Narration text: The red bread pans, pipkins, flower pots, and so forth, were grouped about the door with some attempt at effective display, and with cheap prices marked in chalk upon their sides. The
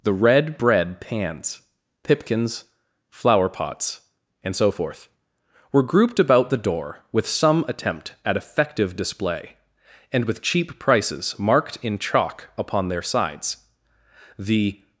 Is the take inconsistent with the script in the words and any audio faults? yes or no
no